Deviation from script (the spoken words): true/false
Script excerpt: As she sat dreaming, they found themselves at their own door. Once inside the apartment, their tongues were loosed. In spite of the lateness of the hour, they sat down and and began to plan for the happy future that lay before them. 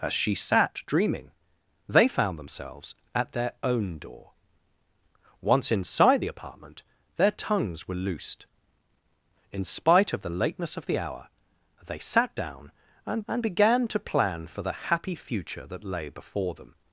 false